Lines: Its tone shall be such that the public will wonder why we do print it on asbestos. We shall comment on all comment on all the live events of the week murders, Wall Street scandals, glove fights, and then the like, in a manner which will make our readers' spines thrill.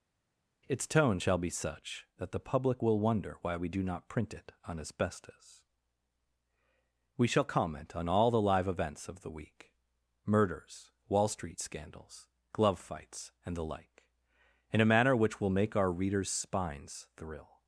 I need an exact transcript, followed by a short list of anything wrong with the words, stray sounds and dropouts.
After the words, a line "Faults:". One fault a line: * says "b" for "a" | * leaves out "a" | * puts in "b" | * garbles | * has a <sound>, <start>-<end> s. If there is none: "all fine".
Its tone shall be such that the public will wonder why we do not print it on asbestos. We shall comment on all the live events of the week murders, Wall Street scandals, glove fights, and the like, in a manner which will make our readers' spines thrill.
Faults:
* puts in "not"
* leaves out "comment on all"
* leaves out "then"